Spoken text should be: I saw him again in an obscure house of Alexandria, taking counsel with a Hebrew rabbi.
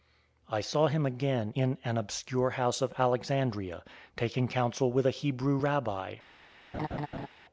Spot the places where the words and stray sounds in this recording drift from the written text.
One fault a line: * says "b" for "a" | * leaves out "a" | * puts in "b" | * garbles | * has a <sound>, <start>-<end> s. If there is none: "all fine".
* has a laugh, 6.7-7.3 s